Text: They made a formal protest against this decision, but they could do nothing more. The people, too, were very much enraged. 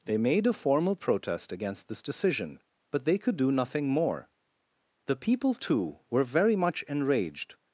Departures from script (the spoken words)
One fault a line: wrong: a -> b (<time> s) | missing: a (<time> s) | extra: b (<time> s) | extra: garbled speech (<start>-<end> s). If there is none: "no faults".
no faults